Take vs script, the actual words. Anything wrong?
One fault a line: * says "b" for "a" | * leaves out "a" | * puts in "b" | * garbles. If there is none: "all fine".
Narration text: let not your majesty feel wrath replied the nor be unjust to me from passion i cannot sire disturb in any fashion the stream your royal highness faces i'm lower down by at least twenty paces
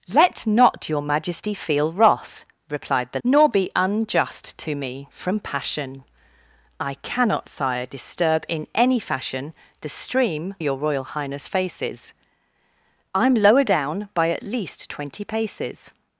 all fine